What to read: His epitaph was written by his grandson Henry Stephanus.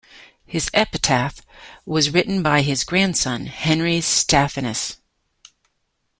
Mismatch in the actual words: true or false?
false